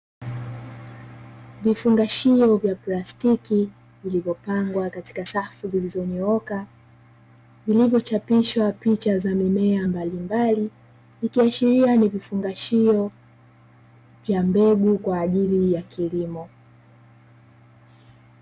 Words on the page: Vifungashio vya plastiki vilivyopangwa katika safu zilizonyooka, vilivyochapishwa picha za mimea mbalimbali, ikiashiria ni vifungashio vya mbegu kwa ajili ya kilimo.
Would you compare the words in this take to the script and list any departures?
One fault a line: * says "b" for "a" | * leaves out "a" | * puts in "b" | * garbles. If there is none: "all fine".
all fine